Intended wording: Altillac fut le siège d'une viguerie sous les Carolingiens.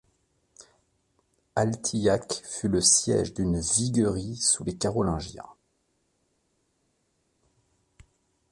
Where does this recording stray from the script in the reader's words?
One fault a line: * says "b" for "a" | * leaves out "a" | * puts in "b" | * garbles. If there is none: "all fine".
all fine